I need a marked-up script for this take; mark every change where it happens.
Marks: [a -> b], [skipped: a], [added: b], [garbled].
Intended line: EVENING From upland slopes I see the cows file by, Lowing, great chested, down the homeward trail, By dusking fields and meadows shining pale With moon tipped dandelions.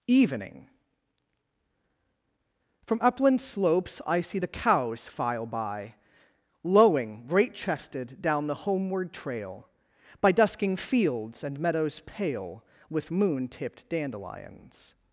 EVENING From upland slopes I see the cows file by, Lowing, great chested, down the homeward trail, By dusking fields and meadows [skipped: shining] pale With moon tipped dandelions.